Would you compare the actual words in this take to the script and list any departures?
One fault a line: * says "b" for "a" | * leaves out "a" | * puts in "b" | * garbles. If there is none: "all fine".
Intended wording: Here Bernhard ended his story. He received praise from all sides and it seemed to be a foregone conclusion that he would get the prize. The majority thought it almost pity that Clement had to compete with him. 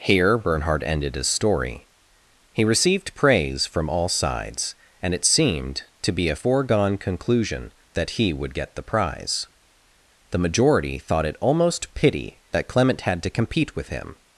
all fine